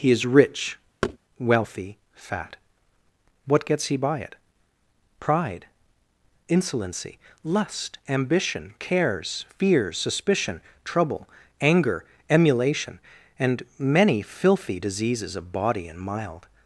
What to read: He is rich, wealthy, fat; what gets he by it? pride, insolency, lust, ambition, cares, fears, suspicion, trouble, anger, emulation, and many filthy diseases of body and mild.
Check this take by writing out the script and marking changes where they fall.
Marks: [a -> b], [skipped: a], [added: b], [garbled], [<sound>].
He is rich, [thud] wealthy, fat; what gets he by it? pride, insolency, lust, ambition, cares, fears, suspicion, trouble, anger, emulation, and many filthy diseases of body and mild.